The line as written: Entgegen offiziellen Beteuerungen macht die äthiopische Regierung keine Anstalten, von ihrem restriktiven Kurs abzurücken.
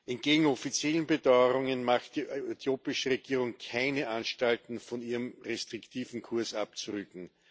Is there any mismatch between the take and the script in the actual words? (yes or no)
no